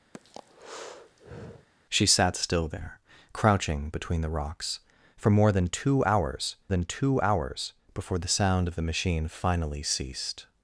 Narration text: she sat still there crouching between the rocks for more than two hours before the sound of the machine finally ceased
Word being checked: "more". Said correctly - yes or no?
yes